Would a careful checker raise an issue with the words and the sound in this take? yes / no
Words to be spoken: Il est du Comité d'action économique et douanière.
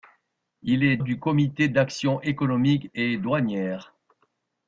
no